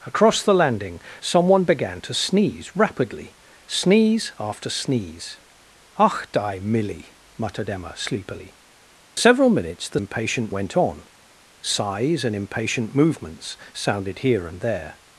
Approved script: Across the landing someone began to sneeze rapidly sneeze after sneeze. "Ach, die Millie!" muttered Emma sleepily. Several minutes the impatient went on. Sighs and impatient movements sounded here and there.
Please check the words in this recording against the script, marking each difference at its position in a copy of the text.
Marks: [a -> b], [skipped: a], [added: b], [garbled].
Across the landing someone began to sneeze rapidly sneeze after sneeze. "Ach, die Millie!" muttered Emma sleepily. Several minutes the impatient went on. Sighs and impatient movements sounded here and there.